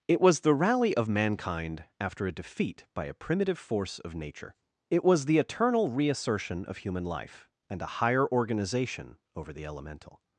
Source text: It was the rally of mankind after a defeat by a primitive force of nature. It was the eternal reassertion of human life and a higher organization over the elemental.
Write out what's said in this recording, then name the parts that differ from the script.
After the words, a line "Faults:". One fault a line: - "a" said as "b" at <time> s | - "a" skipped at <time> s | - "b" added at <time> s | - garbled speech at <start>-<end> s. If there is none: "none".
It was the rally of mankind after a defeat by a primitive force of nature. It was the eternal reassertion of human life and a higher organization over the elemental.
Faults:
none